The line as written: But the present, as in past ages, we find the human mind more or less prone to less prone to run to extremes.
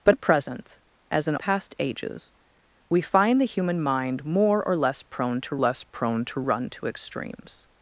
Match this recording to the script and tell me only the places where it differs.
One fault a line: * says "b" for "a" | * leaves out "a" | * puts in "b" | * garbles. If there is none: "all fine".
all fine